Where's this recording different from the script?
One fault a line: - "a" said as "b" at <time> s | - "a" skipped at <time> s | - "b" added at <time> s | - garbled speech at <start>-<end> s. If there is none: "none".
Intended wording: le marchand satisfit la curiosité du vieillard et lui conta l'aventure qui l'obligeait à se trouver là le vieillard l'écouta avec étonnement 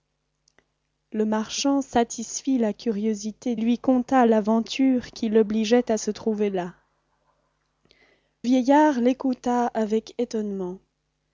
- "du vieillard et" skipped at 3.5 s
- "le" skipped at 6.7 s